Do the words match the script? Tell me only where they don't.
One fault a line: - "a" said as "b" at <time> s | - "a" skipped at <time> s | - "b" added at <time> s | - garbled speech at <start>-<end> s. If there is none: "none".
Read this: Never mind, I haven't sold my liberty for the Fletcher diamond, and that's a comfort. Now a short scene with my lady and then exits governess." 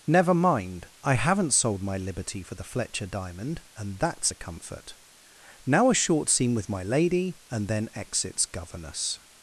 none